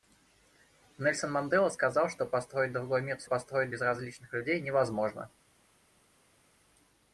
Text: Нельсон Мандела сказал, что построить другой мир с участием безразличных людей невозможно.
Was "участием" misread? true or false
true